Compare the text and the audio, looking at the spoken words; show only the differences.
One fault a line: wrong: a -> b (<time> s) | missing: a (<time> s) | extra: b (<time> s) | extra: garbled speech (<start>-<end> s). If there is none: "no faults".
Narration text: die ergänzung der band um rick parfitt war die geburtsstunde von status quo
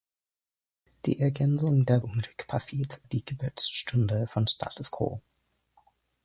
missing: band (2.0 s)
missing: war (3.0 s)